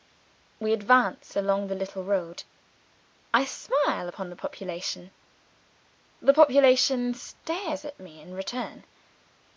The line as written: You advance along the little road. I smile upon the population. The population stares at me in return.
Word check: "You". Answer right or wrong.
wrong